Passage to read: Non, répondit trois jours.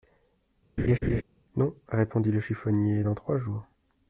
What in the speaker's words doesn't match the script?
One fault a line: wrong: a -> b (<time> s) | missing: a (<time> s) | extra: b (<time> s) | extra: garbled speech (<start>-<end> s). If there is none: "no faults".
extra: le chiffonnier dans (2.3 s)